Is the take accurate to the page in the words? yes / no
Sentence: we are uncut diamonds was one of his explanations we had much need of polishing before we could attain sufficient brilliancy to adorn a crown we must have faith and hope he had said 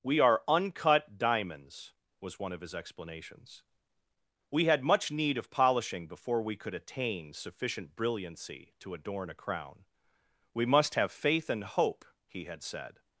yes